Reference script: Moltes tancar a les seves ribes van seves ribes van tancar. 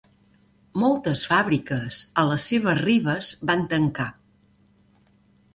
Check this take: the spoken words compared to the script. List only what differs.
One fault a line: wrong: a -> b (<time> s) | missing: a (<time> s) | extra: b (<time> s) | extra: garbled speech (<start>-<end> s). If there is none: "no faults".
wrong: tancar -> fàbriques (1.3 s)
missing: seves ribes van (3.7 s)